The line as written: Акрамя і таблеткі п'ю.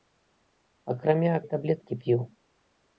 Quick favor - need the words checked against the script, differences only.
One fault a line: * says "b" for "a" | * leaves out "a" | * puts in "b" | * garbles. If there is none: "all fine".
all fine